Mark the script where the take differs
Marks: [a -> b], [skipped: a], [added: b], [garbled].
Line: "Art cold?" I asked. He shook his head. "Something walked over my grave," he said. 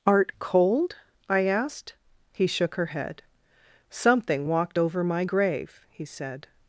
"Art cold?" I asked. He shook [his -> her] head. "Something walked over my grave," he said.